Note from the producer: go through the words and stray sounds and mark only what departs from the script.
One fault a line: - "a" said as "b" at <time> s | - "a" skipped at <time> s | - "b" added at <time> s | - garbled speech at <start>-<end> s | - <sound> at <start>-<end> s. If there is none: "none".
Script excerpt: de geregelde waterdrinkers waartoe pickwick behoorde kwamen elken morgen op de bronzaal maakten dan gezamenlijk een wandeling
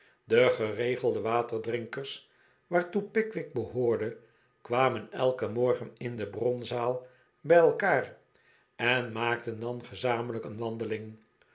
- "op" said as "in" at 6.0 s
- "bij elkaar en" added at 7.4 s